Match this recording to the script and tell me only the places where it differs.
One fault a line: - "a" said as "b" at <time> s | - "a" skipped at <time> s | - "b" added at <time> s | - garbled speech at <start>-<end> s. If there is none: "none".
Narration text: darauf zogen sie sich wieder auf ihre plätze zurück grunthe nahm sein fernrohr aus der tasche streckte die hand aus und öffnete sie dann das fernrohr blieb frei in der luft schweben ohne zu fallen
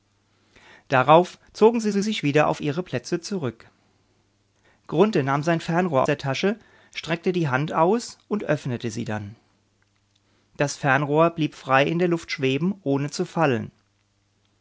- "sie" added at 1.9 s
- "aus" skipped at 6.0 s